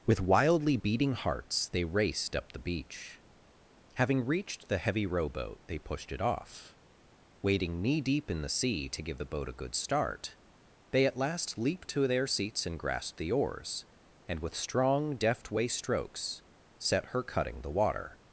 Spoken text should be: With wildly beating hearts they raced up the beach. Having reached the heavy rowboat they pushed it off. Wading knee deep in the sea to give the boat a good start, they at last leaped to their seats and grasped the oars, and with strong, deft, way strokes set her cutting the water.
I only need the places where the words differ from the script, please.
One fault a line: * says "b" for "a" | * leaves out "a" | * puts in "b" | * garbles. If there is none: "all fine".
all fine